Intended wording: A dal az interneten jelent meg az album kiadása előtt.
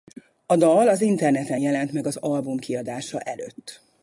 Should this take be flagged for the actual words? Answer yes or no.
no